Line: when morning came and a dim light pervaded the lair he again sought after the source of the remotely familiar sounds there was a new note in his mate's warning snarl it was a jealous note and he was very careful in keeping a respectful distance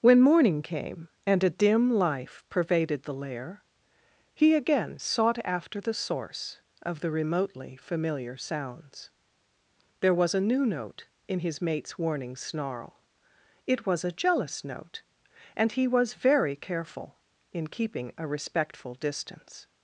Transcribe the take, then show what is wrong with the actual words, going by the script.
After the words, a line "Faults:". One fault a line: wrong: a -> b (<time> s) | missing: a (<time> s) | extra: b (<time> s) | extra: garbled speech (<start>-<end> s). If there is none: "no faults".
when morning came and a dim life pervaded the lair he again sought after the source of the remotely familiar sounds there was a new note in his mate's warning snarl it was a jealous note and he was very careful in keeping a respectful distance
Faults:
wrong: light -> life (1.9 s)